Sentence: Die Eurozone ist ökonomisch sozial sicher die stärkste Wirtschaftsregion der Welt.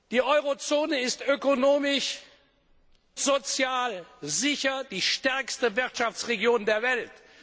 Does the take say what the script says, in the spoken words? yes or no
yes